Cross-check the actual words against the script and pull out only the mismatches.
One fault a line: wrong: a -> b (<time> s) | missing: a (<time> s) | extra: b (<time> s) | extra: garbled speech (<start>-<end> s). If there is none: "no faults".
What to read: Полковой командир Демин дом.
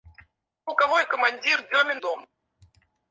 no faults